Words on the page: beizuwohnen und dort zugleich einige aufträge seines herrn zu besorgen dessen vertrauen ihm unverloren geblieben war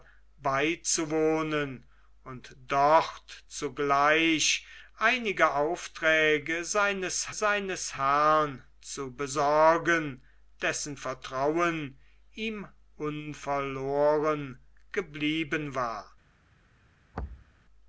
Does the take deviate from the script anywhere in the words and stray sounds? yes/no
yes